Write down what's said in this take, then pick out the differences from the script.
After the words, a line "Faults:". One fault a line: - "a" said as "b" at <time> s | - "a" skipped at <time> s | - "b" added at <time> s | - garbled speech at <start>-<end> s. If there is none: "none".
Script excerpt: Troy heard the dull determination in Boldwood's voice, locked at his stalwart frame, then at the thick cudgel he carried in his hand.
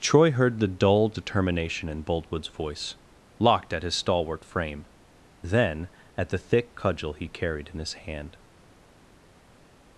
Troy heard the dull determination in Boldwood's voice, locked at his stalwart frame, then at the thick cudgel he carried in his hand.
Faults:
none